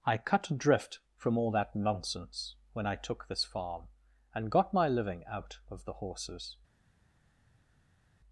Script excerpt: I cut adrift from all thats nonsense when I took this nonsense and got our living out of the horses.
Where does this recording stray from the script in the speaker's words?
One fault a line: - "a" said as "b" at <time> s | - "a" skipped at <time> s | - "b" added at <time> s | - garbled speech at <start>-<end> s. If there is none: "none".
- "thats" said as "that" at 1.5 s
- "nonsense" said as "farm" at 3.4 s
- "our" said as "my" at 4.7 s